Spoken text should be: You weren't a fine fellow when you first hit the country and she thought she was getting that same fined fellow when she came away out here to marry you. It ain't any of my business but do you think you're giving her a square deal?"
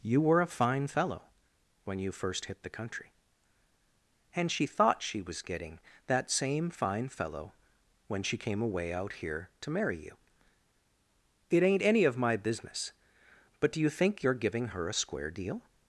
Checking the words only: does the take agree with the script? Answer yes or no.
no